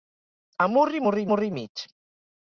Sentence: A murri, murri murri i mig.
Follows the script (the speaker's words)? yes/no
yes